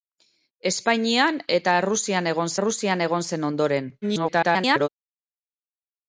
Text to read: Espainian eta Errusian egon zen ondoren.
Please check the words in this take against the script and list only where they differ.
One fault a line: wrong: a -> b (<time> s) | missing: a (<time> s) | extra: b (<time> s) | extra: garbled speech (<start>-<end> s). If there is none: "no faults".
extra: Errusian egon (2.6 s)
extra: garbled speech (4.0-4.9 s)